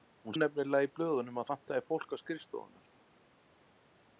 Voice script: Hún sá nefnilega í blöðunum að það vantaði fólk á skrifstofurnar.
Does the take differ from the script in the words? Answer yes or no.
yes